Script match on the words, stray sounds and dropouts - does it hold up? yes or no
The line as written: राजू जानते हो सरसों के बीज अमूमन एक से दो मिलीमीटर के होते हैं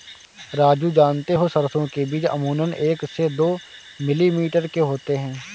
yes